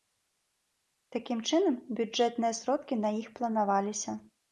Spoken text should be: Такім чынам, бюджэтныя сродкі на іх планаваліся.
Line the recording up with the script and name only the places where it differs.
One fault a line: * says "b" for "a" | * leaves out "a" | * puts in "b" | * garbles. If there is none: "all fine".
all fine